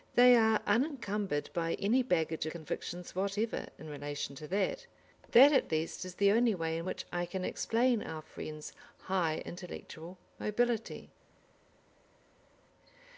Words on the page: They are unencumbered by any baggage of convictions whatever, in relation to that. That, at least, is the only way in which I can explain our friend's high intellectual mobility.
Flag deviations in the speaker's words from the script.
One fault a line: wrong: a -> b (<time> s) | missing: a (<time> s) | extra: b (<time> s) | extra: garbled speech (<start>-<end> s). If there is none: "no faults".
missing: of (2.5 s)